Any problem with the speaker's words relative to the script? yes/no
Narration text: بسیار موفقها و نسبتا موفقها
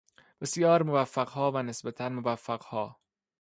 no